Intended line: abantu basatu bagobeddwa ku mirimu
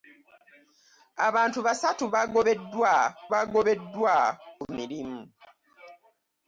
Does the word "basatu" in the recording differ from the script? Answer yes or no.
no